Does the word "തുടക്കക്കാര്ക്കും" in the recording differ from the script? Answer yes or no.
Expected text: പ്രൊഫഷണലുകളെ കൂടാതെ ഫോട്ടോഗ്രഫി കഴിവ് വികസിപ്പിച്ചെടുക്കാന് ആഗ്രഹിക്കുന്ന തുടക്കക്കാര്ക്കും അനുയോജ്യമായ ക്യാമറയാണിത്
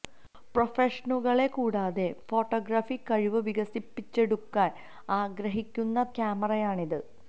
yes